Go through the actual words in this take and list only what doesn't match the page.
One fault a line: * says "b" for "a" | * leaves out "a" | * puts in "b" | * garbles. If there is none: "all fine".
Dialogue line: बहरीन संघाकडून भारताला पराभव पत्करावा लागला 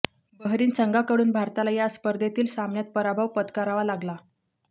* puts in "या स्पर्धेतील सामन्यात"